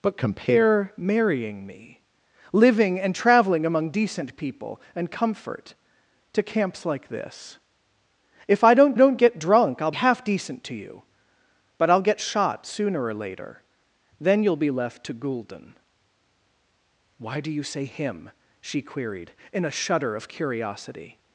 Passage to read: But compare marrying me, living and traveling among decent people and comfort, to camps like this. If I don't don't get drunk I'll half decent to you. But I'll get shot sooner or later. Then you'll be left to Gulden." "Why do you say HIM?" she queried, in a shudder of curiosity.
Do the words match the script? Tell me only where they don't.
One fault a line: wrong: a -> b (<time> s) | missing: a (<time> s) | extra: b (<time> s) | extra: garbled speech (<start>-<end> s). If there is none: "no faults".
no faults